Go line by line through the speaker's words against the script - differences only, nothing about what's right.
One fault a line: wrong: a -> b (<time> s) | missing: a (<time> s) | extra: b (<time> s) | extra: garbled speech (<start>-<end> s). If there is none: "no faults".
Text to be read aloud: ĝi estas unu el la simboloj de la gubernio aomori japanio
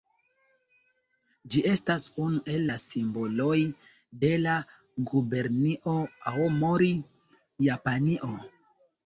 no faults